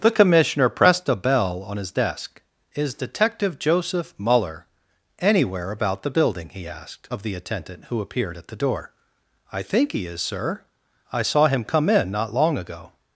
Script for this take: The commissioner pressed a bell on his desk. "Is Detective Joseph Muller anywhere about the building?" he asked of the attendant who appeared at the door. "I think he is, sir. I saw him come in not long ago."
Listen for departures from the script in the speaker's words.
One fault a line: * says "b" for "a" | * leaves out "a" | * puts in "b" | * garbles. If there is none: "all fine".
all fine